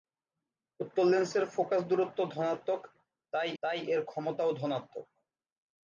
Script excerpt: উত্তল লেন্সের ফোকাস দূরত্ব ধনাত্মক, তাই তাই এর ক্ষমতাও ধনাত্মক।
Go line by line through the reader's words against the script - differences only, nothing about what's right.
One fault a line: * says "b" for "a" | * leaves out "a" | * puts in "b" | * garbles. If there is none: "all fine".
all fine